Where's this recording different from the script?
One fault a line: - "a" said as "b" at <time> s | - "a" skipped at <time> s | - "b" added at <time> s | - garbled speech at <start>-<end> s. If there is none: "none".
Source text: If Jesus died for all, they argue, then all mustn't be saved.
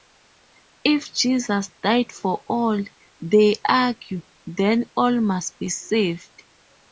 - "mustn't" said as "must" at 5.2 s